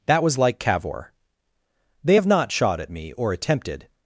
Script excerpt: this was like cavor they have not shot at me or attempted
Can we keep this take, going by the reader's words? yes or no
no